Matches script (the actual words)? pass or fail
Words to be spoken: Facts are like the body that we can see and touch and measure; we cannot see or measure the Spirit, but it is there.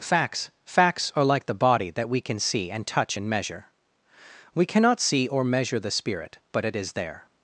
fail